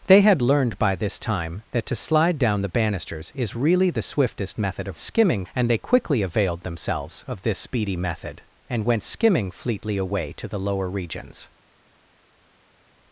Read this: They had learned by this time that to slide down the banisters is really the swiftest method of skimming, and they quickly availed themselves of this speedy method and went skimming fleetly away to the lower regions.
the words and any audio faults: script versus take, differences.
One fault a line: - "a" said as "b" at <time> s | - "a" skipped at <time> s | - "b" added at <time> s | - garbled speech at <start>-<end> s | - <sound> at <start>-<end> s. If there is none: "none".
none